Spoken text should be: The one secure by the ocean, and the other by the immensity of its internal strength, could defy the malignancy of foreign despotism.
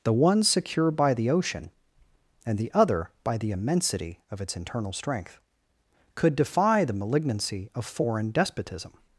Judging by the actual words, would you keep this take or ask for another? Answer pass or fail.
pass